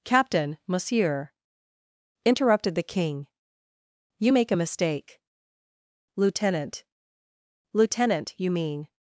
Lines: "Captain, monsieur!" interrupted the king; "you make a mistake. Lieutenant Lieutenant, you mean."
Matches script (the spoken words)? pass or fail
pass